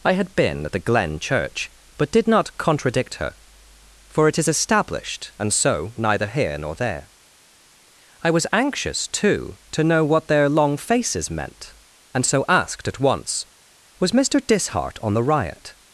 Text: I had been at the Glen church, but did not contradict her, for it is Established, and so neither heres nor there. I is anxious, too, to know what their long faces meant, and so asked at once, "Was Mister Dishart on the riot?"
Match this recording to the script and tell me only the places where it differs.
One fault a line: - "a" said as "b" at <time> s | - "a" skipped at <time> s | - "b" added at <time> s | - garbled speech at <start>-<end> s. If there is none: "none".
- "heres" said as "here" at 6.3 s
- "is" said as "was" at 8.3 s